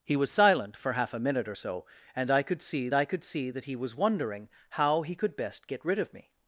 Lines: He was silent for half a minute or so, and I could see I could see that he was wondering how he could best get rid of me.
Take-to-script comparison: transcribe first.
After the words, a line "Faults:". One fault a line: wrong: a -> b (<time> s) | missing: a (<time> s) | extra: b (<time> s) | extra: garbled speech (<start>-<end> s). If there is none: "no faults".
He was silent for half a minute or so, and I could see I could see that he was wondering how he could best get rid of me.
Faults:
no faults